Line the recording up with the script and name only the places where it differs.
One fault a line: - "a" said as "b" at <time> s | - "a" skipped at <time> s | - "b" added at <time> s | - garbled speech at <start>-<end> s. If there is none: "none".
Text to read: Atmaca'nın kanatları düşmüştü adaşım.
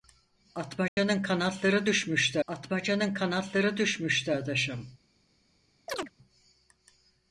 - "atmaca'nın kanatları düşmüştü" added at 2.5 s